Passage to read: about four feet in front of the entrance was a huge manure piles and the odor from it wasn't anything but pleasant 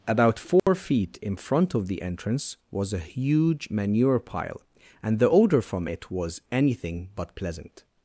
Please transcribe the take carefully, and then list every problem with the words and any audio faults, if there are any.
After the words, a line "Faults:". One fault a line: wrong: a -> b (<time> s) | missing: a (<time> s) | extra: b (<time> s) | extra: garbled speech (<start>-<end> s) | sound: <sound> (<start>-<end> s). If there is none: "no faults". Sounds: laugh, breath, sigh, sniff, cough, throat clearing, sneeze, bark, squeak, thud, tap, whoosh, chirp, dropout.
about four feet in front of the entrance was a huge manure pile and the odor from it was anything but pleasant
Faults:
sound: dropout (0.6-0.7 s)
wrong: piles -> pile (4.2 s)
wrong: wasn't -> was (6.1 s)